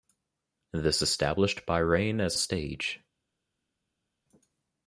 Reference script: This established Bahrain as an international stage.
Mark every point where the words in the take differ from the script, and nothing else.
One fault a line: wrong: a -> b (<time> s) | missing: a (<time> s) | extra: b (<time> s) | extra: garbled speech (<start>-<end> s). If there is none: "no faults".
missing: an international (2.4 s)